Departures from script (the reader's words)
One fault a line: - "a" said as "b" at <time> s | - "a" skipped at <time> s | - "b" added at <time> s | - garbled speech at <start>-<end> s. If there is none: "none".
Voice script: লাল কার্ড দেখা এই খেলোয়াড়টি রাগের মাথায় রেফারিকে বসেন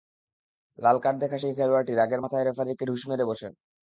- "এই" said as "সেই" at 1.4 s
- "ঢুস মেরে" added at 2.9 s